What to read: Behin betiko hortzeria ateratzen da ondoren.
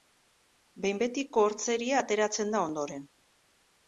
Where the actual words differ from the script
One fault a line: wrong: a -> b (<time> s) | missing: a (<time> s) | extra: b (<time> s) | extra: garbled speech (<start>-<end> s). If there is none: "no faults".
no faults